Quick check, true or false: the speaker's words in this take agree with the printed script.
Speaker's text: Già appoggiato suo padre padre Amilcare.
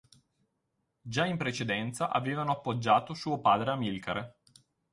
false